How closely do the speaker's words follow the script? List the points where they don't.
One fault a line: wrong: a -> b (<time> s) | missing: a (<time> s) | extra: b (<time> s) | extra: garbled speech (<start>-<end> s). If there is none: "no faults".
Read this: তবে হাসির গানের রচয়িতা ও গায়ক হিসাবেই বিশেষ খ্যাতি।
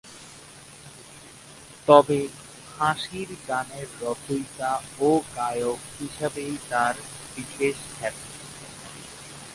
extra: তার (6.7 s)